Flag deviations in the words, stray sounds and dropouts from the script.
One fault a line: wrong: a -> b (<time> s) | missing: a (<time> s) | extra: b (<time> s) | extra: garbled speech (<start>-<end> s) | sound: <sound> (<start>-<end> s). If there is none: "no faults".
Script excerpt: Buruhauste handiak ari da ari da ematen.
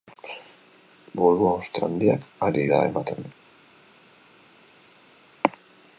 missing: ari da (2.8 s)